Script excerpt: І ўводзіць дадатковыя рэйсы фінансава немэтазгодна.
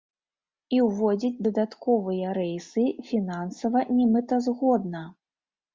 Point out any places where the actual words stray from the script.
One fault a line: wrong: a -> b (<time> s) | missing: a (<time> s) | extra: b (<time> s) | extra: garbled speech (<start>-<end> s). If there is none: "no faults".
no faults